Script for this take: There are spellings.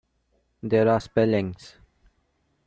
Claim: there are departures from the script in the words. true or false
false